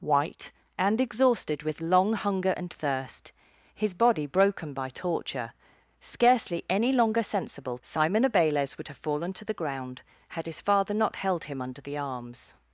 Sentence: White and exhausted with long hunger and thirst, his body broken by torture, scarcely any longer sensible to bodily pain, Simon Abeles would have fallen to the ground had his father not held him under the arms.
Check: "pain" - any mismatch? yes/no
yes